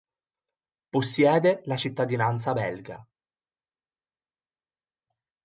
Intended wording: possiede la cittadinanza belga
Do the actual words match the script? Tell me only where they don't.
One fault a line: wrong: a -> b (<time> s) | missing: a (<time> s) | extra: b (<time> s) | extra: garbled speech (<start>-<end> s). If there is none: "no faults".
no faults